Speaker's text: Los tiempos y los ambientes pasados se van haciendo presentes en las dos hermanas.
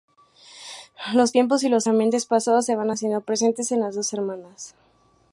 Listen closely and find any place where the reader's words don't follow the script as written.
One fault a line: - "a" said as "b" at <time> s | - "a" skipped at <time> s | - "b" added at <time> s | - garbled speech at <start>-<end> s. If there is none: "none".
none